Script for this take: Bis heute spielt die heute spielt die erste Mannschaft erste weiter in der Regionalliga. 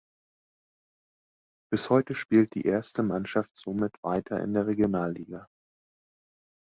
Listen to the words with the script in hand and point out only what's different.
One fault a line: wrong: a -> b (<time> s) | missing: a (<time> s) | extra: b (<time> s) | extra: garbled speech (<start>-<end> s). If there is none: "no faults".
missing: heute spielt die (2.6 s)
wrong: erste -> somit (3.5 s)